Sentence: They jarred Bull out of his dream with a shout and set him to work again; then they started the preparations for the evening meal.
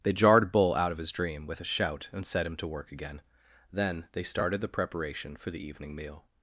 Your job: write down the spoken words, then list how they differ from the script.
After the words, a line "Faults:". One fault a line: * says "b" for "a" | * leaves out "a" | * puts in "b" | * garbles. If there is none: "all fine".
They jarred Bull out of his dream with a shout and set him to work again; then they started the preparation for the evening meal.
Faults:
* says "preparation" for "preparations"